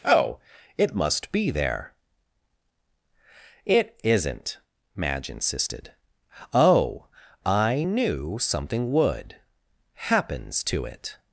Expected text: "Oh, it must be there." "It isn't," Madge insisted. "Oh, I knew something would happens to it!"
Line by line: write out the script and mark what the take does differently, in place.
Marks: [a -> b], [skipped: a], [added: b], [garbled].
"Oh, it must be there." "It isn't," Madge insisted. "Oh, I knew something would happens to it!"